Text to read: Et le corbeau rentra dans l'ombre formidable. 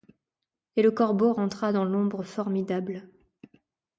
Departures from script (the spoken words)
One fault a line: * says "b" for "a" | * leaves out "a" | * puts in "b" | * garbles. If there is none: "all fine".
all fine